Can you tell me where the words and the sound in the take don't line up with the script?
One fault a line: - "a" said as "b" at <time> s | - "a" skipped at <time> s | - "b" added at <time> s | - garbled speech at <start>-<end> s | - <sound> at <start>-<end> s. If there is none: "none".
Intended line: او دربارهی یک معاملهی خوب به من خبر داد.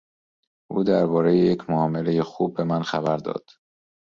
none